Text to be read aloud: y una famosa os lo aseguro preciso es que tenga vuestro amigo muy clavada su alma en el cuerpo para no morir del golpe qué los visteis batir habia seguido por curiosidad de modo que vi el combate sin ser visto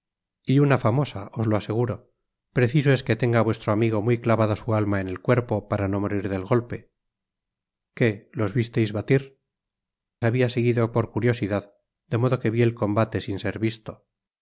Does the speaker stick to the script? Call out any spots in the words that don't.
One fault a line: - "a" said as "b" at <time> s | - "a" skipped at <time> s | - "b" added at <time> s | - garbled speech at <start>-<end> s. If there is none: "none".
none